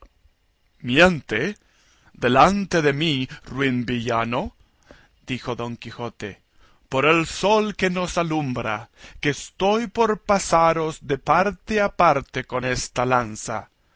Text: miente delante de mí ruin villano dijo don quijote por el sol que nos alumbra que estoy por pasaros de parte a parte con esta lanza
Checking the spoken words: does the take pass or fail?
pass